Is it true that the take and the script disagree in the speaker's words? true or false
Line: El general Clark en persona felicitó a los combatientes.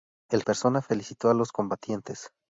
true